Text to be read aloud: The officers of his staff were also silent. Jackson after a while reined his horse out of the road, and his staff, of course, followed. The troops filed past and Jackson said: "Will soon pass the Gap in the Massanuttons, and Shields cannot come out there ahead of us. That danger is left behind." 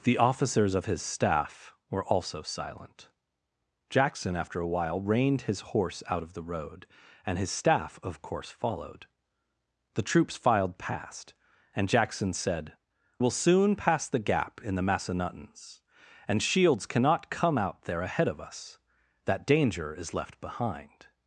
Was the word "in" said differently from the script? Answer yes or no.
no